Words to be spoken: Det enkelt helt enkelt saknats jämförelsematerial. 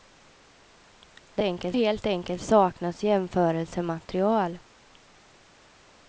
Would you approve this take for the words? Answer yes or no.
yes